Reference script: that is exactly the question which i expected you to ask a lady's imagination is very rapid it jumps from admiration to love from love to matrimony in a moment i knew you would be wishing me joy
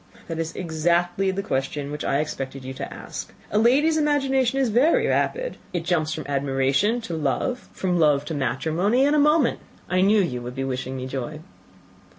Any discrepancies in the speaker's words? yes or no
no